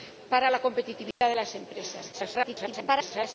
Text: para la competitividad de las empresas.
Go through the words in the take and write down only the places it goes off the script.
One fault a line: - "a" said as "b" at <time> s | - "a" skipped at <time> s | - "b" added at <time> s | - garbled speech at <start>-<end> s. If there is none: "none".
- garbled speech at 2.1-3.3 s